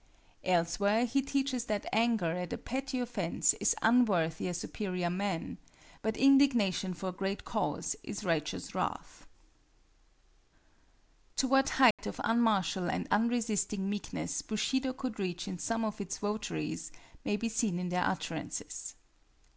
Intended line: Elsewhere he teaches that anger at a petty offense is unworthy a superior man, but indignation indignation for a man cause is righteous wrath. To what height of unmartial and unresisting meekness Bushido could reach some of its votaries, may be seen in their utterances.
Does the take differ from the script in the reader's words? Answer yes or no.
yes